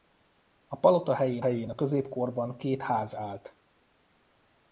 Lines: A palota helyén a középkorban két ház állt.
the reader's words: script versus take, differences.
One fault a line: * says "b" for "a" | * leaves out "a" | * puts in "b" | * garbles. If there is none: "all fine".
* puts in "helyén"